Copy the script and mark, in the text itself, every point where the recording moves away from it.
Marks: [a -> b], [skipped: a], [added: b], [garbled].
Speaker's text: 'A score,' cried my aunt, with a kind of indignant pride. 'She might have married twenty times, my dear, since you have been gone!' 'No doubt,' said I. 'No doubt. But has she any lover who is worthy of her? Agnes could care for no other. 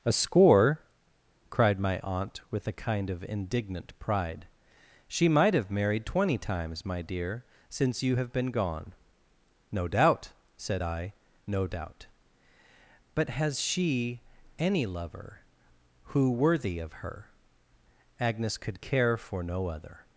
'A score,' cried my aunt, with a kind of indignant pride. 'She might have married twenty times, my dear, since you have been gone!' 'No doubt,' said I. 'No doubt. But has she any lover who [skipped: is] worthy of her? Agnes could care for no other.